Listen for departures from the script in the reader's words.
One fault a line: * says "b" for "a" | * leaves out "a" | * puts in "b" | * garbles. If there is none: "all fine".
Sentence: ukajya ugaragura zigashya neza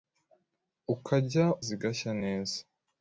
* leaves out "ugaragura"